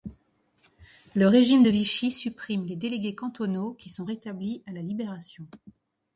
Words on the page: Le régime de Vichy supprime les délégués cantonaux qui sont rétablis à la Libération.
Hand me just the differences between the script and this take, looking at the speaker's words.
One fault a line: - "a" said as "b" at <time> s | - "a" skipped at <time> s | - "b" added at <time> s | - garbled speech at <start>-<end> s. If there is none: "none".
none